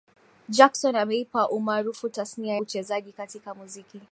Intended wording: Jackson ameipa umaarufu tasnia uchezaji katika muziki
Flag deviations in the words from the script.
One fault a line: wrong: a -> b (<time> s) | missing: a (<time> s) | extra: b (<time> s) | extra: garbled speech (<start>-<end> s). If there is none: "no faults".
no faults